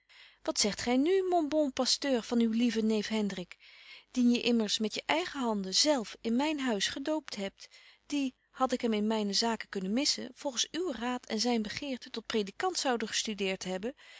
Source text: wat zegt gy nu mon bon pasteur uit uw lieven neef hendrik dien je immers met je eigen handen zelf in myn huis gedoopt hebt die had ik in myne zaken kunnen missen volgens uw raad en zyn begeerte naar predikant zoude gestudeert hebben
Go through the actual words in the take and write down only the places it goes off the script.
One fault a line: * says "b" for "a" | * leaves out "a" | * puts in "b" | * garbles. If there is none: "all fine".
* says "van" for "uit"
* puts in "hem"
* says "tot" for "naar"